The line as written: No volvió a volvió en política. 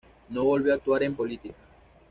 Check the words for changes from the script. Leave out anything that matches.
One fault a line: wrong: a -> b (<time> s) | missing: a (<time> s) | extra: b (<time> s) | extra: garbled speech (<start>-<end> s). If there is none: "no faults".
wrong: volvió -> actuar (0.7 s)